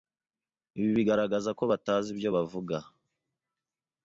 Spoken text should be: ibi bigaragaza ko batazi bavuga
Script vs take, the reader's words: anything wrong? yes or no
yes